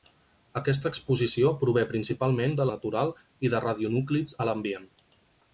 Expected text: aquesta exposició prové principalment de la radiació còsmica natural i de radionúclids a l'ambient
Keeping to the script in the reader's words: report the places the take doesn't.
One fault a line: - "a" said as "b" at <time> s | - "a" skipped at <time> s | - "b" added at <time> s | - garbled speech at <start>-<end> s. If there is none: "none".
- "la radiació còsmica" skipped at 2.7 s